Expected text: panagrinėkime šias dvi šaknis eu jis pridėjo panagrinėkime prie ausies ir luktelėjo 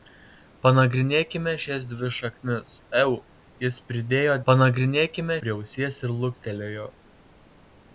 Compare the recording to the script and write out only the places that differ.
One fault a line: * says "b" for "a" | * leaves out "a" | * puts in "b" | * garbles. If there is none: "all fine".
all fine